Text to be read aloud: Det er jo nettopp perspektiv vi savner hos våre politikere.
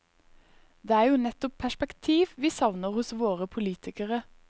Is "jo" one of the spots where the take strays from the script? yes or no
no